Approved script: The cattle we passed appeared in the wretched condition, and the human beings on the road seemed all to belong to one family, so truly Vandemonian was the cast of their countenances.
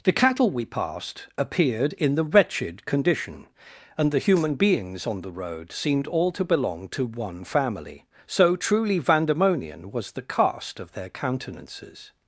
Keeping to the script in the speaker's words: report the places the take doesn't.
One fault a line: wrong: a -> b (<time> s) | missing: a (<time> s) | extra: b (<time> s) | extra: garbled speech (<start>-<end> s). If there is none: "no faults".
no faults